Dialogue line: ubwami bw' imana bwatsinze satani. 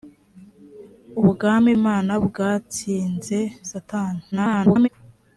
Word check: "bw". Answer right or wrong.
wrong